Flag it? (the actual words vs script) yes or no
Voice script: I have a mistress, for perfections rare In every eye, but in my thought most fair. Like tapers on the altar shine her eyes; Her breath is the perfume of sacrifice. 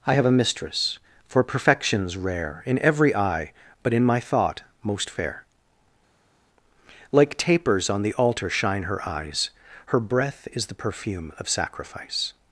no